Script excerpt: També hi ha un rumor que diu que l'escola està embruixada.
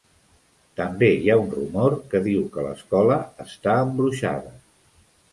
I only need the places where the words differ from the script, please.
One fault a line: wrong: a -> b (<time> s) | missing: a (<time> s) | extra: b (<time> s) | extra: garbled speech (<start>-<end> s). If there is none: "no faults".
no faults